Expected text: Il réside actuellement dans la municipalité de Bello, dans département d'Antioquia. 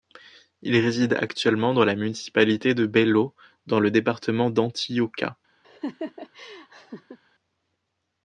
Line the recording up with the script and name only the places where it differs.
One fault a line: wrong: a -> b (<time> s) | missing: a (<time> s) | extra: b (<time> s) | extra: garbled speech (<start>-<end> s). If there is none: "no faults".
extra: le (3.8 s)